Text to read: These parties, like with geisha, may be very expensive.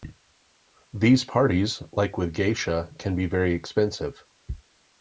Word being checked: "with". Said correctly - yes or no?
yes